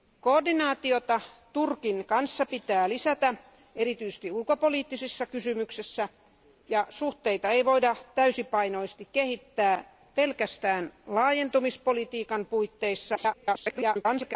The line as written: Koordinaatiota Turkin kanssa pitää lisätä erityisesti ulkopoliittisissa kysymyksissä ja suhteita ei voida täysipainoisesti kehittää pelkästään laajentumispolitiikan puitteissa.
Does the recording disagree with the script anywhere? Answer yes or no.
yes